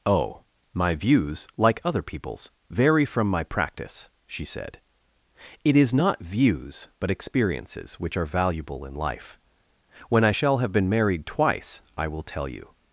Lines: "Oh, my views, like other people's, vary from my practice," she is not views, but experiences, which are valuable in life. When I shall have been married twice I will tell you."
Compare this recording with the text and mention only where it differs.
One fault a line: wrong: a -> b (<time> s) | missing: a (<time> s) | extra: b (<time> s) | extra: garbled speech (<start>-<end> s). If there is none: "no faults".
extra: said It (4.5 s)